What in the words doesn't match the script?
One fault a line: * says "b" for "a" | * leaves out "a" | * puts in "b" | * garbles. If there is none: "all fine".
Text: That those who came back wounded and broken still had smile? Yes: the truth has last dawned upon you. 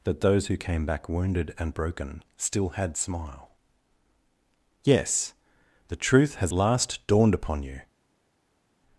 all fine